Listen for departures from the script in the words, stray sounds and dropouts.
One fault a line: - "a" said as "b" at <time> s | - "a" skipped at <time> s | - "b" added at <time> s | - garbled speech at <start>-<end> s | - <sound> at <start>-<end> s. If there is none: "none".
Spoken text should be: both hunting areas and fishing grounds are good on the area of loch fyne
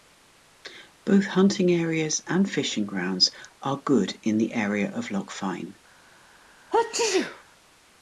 - "on" said as "in" at 4.2 s
- sneeze at 6.7-7.4 s